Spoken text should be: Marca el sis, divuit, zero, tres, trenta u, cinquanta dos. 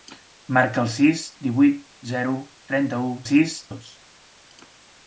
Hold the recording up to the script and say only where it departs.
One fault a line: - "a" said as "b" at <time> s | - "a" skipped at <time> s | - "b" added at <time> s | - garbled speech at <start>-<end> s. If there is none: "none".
- "tres" skipped at 2.3 s
- "cinquanta" said as "sis" at 3.2 s